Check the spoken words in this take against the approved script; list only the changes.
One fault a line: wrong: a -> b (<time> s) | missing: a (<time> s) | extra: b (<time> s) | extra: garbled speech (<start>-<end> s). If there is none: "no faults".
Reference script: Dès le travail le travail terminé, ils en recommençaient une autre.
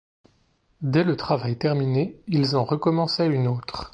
missing: le travail (1.6 s)